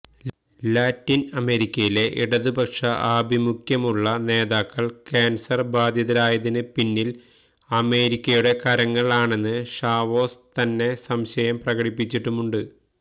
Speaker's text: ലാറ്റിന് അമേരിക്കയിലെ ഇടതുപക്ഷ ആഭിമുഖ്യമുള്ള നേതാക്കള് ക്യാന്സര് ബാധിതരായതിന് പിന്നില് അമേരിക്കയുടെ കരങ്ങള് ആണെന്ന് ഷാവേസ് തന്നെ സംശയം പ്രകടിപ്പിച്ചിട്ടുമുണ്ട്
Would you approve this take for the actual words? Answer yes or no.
yes